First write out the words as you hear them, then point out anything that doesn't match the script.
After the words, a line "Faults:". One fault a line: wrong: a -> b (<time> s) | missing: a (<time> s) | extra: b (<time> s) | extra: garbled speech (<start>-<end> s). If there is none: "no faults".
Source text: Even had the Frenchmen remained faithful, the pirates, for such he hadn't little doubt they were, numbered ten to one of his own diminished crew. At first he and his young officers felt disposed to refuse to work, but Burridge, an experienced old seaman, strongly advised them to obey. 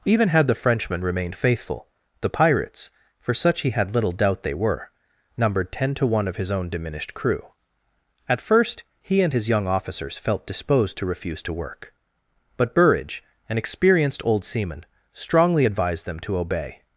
Even had the Frenchmen remained faithful, the pirates, for such he had little doubt they were, numbered ten to one of his own diminished crew. At first he and his young officers felt disposed to refuse to work, but Burridge, an experienced old seaman, strongly advised them to obey.
Faults:
wrong: hadn't -> had (3.7 s)